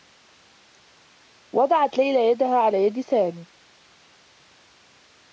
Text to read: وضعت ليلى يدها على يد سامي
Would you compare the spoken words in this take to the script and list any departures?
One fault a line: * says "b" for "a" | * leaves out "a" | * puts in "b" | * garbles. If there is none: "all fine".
all fine